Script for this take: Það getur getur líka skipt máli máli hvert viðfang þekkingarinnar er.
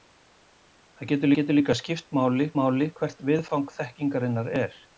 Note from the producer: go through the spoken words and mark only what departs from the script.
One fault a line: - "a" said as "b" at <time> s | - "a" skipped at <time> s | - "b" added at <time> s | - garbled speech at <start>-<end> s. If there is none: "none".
none